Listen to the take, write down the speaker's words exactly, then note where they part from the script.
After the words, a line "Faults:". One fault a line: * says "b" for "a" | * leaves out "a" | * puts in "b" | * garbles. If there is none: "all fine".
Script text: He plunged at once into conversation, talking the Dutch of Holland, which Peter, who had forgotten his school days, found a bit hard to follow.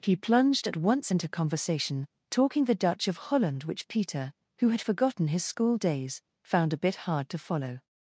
He plunged at once into conversation, talking the Dutch of Holland, which Peter, who had forgotten his school days, found a bit hard to follow.
Faults:
all fine